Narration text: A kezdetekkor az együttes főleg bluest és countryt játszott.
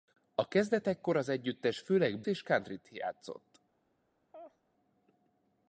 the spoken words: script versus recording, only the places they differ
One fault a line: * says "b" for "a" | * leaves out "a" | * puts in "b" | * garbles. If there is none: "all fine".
* leaves out "bluest"